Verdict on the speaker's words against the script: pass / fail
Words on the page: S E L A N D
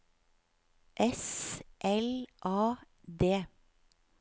fail